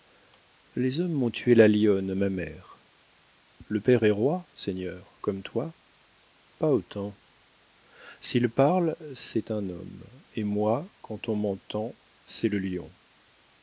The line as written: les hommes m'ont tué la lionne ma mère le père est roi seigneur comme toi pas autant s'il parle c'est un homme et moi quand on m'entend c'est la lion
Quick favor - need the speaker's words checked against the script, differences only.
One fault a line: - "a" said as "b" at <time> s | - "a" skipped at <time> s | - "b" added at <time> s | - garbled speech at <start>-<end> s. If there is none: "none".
- "la" said as "le" at 12.5 s